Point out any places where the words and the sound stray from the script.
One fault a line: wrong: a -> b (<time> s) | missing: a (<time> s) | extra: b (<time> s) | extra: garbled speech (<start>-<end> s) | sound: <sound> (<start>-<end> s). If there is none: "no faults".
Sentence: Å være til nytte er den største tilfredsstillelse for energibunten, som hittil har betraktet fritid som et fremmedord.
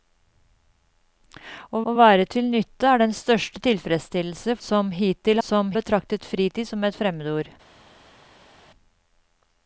extra: å (1.8 s)
missing: for energibunten (4.6 s)
wrong: har -> som (5.5 s)